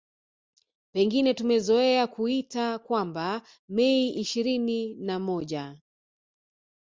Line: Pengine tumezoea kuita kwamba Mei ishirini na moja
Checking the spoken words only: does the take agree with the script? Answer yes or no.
yes